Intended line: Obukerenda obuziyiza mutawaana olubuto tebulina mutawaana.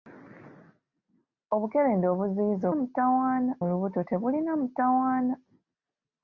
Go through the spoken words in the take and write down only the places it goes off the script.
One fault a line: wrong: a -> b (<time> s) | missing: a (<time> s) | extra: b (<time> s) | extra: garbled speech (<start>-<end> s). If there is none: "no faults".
no faults